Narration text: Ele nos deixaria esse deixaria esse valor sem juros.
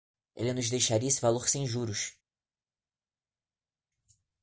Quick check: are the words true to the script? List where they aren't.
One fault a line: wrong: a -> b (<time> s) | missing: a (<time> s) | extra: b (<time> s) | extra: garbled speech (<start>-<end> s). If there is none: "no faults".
missing: deixaria esse (1.2 s)